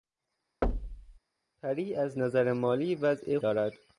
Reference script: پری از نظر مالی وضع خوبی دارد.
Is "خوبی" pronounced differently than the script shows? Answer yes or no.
yes